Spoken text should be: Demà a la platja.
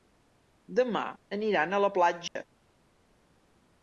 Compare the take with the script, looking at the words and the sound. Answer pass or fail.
fail